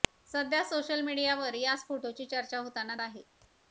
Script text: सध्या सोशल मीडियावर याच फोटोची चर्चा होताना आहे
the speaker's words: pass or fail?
pass